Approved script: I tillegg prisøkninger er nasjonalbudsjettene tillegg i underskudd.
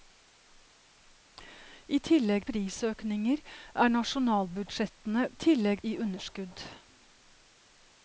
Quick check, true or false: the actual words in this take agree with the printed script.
true